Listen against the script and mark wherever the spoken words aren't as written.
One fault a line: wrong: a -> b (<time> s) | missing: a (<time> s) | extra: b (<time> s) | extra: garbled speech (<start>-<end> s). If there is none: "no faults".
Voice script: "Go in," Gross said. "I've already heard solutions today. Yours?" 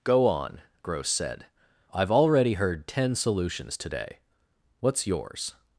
wrong: in -> on (0.2 s)
extra: ten (2.9 s)
extra: What's (4.8 s)